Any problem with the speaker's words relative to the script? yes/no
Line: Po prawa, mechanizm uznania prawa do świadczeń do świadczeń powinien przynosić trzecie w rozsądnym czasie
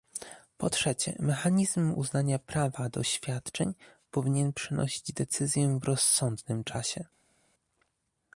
yes